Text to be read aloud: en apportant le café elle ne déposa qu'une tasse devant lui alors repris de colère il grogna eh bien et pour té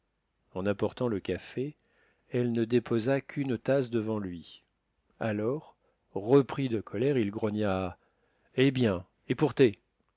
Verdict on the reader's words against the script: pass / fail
pass